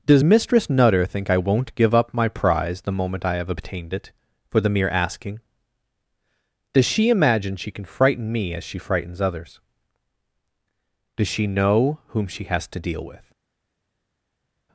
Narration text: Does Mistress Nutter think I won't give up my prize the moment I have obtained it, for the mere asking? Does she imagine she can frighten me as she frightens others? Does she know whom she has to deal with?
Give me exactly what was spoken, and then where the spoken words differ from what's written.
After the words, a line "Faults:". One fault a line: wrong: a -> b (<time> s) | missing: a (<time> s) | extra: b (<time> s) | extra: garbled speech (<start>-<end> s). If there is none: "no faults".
Does Mistress Nutter think I won't give up my prize the moment I have obtained it, for the mere asking? Does she imagine she can frighten me as she frightens others? Does she know whom she has to deal with?
Faults:
no faults